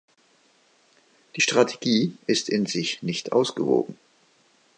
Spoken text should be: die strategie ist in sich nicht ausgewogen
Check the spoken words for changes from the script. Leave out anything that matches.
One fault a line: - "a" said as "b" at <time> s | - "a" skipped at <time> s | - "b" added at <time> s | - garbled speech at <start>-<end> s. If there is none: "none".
none